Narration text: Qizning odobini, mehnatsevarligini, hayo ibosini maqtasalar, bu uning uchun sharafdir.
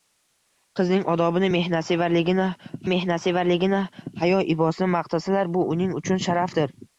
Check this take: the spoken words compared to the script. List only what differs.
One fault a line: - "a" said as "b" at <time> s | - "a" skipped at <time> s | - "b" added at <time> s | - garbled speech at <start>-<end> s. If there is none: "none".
- "mehnatsevarligini" added at 2.9 s